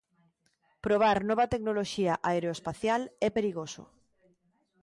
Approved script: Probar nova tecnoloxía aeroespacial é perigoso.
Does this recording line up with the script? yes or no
yes